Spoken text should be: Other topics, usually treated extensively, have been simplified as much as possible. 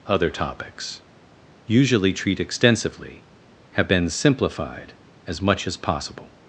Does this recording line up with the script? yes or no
no